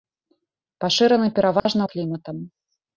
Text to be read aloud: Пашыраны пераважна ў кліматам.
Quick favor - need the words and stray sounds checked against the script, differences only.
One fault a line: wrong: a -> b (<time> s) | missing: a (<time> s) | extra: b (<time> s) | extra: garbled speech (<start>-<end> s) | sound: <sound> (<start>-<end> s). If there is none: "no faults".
sound: dropout (1.6-1.7 s)